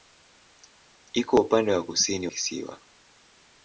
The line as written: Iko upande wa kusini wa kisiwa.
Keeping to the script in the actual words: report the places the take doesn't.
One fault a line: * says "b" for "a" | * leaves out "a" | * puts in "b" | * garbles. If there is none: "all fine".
* leaves out "wa"